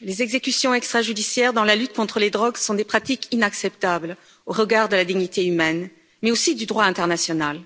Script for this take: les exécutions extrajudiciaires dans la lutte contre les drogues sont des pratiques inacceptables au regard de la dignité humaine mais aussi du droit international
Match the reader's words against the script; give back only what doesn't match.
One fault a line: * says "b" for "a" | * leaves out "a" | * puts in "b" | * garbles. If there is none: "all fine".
all fine